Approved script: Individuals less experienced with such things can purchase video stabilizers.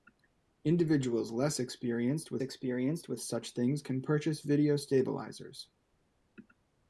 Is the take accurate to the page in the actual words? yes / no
no